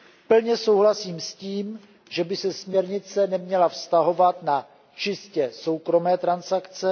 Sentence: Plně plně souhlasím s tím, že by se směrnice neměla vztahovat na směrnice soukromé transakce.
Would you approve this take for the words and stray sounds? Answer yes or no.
no